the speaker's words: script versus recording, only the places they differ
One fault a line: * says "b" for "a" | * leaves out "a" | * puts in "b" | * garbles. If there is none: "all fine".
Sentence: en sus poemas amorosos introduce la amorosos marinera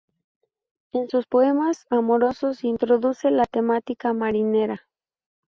* says "temática" for "amorosos"